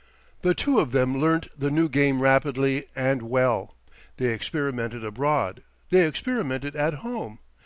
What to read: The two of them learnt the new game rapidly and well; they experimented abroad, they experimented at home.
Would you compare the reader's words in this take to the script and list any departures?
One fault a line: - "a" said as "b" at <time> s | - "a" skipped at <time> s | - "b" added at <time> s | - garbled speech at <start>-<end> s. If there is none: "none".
none